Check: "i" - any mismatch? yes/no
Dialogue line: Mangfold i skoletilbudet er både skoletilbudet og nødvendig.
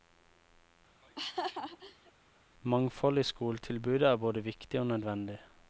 no